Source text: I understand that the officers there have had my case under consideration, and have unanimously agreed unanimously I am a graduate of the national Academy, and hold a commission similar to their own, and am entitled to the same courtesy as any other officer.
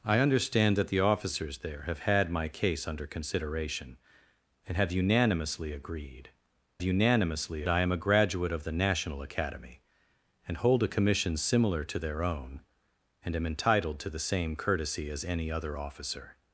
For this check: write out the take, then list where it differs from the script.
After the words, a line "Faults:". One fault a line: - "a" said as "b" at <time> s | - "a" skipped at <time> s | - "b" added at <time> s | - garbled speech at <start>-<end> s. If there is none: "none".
I understand that the officers there have had my case under consideration, and have unanimously agreed unanimously I am a graduate of the national Academy, and hold a commission similar to their own, and am entitled to the same courtesy as any other officer.
Faults:
none